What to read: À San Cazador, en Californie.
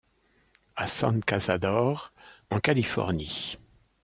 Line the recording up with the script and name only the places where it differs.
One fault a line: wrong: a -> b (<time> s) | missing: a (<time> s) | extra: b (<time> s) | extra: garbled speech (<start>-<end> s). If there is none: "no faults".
no faults